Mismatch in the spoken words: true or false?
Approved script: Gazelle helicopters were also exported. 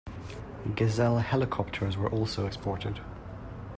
false